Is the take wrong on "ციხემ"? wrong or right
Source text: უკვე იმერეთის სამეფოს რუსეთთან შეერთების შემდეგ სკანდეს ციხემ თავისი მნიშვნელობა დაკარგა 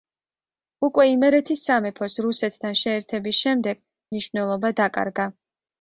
wrong